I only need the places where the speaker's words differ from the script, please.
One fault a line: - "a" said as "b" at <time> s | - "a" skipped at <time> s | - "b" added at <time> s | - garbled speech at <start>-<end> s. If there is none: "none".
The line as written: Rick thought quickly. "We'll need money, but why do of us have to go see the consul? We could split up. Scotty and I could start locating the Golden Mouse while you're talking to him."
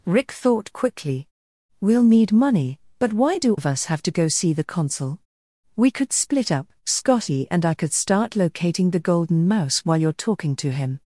none